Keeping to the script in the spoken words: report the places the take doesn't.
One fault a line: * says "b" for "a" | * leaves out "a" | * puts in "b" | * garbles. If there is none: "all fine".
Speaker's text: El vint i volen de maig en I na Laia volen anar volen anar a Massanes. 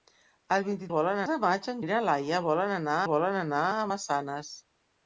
all fine